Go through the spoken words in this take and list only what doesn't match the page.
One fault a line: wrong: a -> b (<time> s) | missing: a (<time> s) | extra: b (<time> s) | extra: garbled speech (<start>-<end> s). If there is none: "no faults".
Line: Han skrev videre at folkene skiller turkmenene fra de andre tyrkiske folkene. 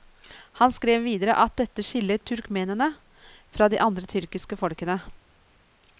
wrong: folkene -> dette (1.6 s)